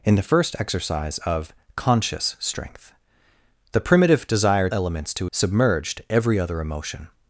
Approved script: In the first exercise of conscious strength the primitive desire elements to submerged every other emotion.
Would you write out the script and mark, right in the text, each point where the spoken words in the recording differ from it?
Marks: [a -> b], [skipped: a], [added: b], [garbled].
In the first exercise of conscious strength the primitive desire elements to submerged every other emotion.